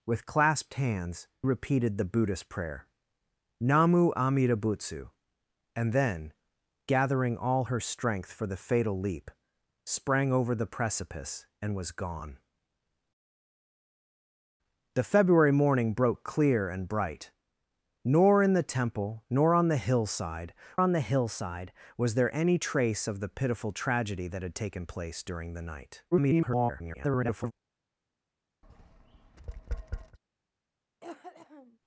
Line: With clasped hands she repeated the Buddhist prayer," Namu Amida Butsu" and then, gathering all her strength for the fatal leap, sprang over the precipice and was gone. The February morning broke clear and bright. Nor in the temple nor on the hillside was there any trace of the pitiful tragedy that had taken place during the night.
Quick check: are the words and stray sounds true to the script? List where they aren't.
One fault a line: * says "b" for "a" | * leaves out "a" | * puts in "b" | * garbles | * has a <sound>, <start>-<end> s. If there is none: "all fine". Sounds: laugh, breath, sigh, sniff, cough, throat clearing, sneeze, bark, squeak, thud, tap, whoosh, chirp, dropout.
* leaves out "she"
* puts in "on the hillside"
* garbles
* has a tap, 28.6-30.2 s
* has a cough, 31.0-31.8 s